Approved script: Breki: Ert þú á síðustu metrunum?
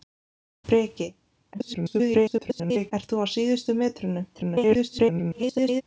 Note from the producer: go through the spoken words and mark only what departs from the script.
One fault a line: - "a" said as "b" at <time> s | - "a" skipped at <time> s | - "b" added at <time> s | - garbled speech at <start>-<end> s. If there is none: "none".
- garbled speech at 1.5-2.9 s
- garbled speech at 4.3-5.8 s